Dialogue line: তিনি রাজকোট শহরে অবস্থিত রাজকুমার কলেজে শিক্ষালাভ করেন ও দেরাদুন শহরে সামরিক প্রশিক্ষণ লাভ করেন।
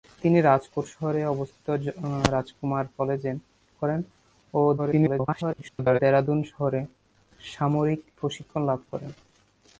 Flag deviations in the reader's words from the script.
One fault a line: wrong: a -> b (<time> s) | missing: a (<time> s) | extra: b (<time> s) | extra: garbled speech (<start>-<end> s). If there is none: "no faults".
missing: শিক্ষালাভ (3.3 s)
extra: garbled speech (4.8-6.0 s)